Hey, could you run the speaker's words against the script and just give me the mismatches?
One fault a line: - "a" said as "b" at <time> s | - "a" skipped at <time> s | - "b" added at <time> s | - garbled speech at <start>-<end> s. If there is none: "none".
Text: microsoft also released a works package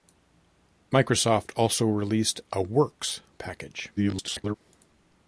- garbled speech at 4.0-4.6 s